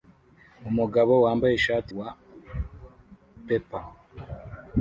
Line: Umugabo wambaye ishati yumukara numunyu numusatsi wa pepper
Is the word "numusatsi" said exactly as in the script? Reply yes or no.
no